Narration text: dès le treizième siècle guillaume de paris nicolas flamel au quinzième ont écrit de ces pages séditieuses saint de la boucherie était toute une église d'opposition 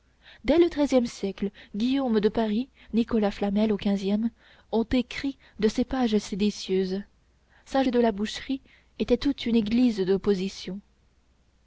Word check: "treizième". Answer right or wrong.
right